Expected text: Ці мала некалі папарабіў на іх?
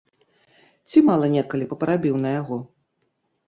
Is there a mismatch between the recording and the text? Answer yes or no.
yes